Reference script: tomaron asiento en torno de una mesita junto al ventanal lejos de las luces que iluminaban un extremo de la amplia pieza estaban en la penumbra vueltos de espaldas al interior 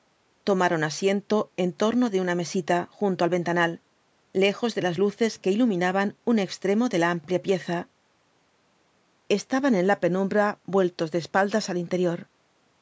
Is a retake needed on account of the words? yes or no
no